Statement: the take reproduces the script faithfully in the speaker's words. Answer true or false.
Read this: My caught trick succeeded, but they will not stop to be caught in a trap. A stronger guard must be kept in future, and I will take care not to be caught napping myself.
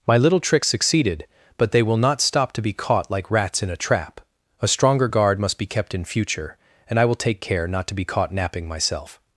false